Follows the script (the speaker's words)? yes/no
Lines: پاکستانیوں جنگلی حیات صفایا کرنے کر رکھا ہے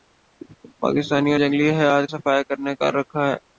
yes